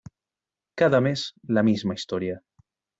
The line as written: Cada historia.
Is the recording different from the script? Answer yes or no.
yes